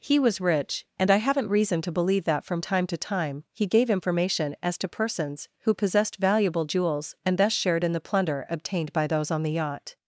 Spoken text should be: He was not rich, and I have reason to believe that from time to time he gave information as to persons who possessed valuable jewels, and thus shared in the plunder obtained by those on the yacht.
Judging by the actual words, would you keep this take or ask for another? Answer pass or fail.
fail